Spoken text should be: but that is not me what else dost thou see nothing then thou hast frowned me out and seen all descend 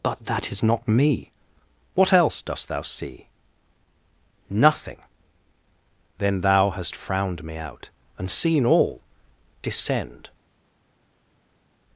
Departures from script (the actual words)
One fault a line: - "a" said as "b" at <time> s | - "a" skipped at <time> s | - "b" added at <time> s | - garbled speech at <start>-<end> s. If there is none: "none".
none